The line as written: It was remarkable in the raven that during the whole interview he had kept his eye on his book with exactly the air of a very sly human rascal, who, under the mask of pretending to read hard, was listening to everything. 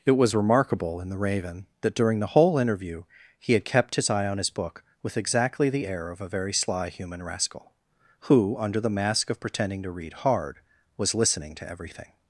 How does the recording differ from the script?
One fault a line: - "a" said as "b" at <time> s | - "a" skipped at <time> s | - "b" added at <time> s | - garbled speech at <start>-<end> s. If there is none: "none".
none